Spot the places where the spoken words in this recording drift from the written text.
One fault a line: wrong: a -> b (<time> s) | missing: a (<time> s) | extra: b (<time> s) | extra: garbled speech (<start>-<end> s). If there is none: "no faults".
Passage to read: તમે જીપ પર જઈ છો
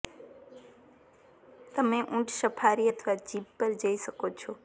extra: ઊંટ સફારી અથવા (2.0 s)
extra: શકો (4.0 s)